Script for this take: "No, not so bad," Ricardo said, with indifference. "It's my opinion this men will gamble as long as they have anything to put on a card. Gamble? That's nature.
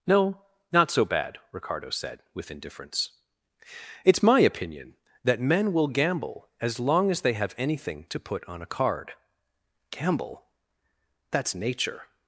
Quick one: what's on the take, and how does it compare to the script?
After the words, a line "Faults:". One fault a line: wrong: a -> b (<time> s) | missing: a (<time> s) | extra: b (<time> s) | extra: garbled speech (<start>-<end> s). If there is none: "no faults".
"No, not so bad," Ricardo said, with indifference. "It's my opinion that men will gamble as long as they have anything to put on a card. Gamble? That's nature.
Faults:
wrong: this -> that (5.2 s)